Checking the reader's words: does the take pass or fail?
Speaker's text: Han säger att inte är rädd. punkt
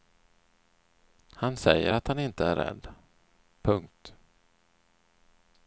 fail